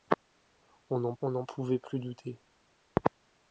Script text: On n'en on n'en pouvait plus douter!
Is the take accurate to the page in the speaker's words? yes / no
yes